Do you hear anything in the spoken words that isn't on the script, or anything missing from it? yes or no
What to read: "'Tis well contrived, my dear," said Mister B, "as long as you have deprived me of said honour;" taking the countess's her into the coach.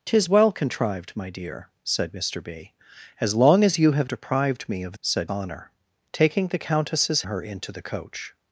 no